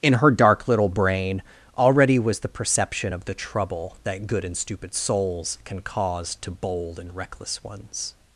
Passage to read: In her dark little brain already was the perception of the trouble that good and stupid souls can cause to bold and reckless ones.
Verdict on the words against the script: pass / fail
pass